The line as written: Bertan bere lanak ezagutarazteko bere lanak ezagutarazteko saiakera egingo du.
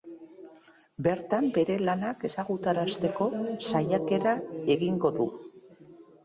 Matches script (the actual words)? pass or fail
fail